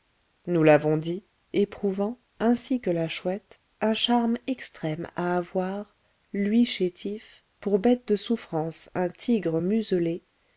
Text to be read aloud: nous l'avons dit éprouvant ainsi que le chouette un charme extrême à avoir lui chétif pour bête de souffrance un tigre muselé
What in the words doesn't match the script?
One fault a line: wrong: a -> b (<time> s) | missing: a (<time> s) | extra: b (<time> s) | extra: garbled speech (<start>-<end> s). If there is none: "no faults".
wrong: le -> la (2.9 s)